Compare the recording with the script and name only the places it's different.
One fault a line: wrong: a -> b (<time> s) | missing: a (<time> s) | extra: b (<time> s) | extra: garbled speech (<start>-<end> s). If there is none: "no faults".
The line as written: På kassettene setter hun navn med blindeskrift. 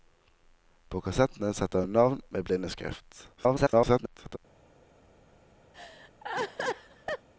extra: garbled speech (3.4-4.4 s)